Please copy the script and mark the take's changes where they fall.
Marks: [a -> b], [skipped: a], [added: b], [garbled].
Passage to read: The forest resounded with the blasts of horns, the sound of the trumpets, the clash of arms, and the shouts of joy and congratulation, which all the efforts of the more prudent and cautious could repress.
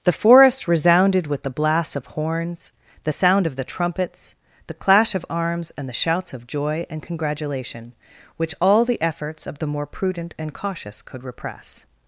The forest resounded with the blasts of horns, the sound of the trumpets, the clash of arms, and the shouts of joy and congratulation, which all the efforts of the more prudent and cautious could repress.